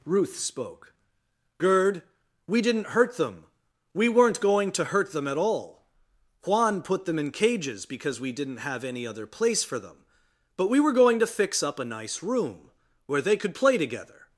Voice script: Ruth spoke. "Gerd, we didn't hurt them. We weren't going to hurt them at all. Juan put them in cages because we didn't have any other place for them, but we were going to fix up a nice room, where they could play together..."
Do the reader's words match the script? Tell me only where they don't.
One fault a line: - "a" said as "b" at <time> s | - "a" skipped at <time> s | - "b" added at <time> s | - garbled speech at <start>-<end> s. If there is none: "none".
none